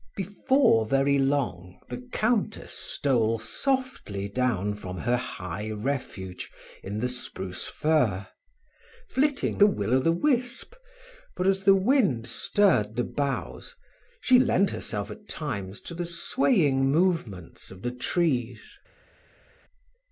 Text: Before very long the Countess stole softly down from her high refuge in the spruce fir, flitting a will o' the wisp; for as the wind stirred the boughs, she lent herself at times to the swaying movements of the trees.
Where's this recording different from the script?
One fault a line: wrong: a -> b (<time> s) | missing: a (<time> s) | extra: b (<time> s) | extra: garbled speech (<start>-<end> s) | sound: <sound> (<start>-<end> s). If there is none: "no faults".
no faults